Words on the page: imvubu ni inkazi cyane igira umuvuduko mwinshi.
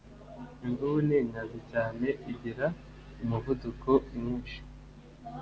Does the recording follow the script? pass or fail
pass